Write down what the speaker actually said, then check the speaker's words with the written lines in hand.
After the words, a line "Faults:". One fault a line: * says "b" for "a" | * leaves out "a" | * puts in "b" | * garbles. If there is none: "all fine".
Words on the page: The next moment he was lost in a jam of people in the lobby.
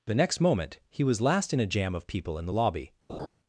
The next moment he was last in a jam of people in the lobby.
Faults:
* says "last" for "lost"